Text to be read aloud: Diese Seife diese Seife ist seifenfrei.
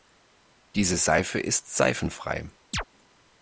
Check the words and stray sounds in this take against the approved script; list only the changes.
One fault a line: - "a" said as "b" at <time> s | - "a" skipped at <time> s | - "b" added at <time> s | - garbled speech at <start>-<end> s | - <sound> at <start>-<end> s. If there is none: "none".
- "diese Seife" skipped at 1.4 s
- chirp at 2.7-2.8 s